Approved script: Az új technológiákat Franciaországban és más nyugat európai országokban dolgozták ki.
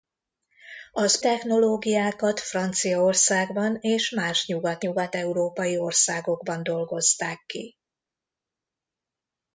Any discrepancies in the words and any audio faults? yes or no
yes